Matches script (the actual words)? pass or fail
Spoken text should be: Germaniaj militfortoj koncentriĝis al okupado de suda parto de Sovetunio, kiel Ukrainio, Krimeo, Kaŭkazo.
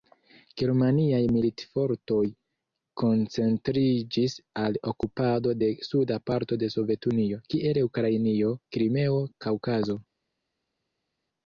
pass